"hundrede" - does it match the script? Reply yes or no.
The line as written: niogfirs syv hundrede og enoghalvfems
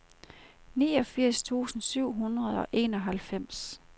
yes